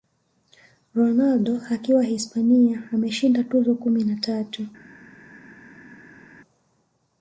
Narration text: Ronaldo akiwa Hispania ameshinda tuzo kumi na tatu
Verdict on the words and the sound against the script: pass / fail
pass